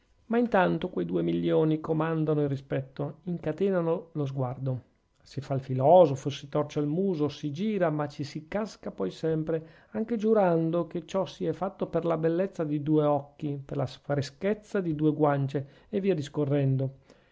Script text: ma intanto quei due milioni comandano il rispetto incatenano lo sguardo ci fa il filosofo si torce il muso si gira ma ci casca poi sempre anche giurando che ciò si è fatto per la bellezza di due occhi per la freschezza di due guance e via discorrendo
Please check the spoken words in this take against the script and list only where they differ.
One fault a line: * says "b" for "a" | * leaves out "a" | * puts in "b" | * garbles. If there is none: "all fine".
* says "si" for "ci"
* puts in "si"